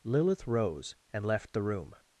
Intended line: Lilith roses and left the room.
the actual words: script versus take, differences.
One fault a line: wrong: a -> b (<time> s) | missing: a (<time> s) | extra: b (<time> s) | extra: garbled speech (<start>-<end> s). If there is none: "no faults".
wrong: roses -> rose (0.5 s)